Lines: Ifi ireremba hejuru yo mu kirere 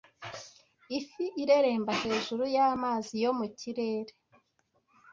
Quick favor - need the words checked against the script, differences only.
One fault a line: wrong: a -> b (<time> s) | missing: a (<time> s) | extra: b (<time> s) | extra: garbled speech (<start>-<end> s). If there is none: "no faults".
extra: y'amazi (2.5 s)